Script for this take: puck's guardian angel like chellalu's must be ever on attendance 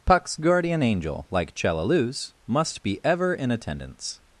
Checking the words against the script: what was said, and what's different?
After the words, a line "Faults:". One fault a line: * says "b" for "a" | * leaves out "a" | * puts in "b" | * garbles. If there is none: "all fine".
puck's guardian angel like chellalu's must be ever in attendance
Faults:
* says "in" for "on"